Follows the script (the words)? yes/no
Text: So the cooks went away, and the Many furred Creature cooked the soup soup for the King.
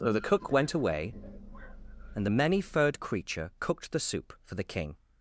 no